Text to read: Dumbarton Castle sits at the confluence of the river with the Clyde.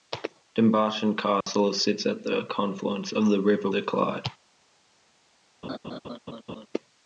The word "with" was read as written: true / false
false